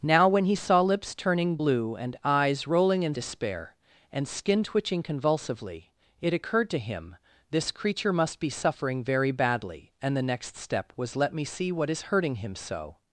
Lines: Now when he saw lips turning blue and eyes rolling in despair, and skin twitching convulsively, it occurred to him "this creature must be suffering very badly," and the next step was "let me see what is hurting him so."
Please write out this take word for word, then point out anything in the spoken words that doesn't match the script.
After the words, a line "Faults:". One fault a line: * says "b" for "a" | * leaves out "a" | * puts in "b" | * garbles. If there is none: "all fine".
Now when he saw lips turning blue and eyes rolling in despair, and skin twitching convulsively, it occurred to him "this creature must be suffering very badly," and the next step was "let me see what is hurting him so."
Faults:
all fine